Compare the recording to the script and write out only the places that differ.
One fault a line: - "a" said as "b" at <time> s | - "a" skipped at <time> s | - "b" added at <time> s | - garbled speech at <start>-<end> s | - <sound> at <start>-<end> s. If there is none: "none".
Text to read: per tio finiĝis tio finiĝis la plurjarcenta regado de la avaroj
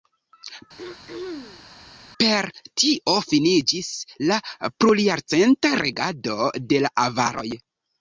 - throat clearing at 0.8-1.7 s
- "tio finiĝis" skipped at 3.9 s